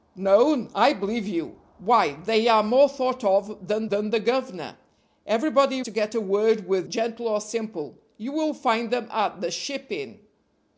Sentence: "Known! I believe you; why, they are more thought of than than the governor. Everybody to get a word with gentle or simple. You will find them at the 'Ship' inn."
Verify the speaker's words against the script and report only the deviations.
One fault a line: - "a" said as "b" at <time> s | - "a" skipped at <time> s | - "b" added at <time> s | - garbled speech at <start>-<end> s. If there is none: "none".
none